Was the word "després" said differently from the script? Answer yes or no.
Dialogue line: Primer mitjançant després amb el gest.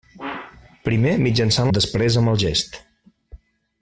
no